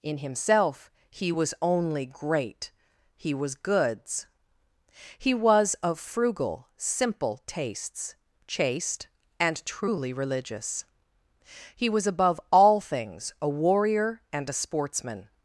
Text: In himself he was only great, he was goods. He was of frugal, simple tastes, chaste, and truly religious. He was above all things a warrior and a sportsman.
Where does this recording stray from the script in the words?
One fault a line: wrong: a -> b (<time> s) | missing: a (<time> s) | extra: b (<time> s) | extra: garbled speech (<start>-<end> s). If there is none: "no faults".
no faults